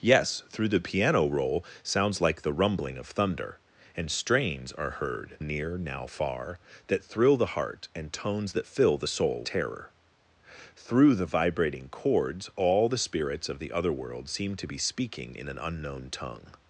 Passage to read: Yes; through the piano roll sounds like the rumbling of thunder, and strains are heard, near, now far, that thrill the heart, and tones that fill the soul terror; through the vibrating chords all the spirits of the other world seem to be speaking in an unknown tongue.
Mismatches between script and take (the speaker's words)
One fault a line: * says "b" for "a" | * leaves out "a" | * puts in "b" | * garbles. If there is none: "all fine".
all fine